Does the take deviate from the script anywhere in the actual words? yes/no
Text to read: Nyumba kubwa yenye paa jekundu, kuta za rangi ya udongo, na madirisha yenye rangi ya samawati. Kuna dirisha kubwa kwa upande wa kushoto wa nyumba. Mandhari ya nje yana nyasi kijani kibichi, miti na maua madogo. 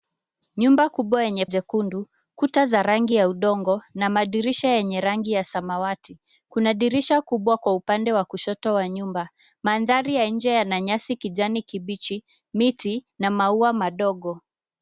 yes